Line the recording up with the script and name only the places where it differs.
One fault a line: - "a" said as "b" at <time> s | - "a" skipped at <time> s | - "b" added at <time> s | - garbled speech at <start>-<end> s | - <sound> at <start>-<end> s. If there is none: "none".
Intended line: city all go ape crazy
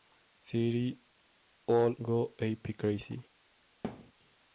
- thud at 3.8-4.1 s